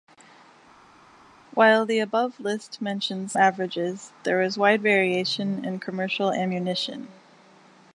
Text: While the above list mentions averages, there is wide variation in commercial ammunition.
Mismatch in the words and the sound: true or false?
false